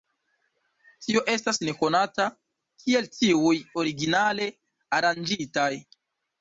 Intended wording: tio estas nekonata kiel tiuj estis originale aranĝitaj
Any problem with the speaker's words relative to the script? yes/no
yes